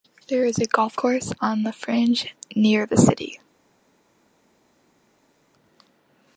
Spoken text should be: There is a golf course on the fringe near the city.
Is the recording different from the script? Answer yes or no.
no